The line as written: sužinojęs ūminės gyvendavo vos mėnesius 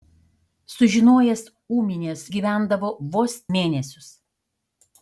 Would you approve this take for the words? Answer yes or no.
yes